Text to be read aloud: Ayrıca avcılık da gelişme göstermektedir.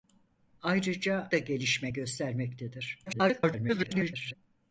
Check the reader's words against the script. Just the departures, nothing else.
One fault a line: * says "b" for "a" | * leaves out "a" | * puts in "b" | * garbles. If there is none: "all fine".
* leaves out "avcılık"
* garbles